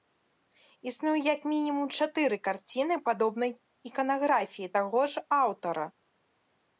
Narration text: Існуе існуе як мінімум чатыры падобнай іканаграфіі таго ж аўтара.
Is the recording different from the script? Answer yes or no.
yes